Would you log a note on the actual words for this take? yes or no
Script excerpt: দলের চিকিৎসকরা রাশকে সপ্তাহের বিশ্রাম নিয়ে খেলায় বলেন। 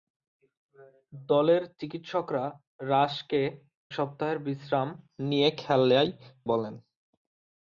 no